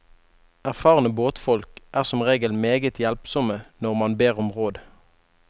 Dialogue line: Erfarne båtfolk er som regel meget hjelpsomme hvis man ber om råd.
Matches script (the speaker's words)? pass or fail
fail